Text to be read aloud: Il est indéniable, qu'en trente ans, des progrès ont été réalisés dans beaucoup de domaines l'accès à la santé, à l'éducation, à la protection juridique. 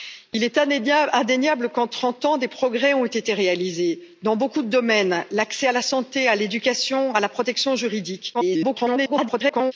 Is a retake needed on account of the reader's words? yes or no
yes